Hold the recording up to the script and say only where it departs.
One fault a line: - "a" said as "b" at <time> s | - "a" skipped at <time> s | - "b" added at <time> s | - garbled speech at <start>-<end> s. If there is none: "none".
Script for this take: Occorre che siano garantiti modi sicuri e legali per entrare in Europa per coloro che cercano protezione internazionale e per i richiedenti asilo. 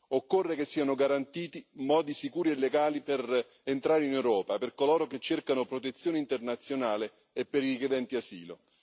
none